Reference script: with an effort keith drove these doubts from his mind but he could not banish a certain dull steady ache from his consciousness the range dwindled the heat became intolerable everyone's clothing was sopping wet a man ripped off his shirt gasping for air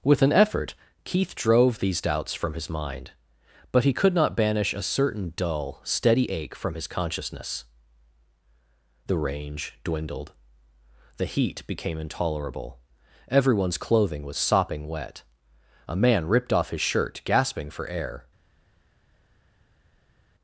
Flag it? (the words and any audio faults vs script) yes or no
no